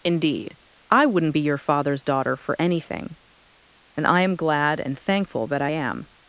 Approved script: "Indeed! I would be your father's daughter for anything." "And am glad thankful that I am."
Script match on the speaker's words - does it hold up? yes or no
no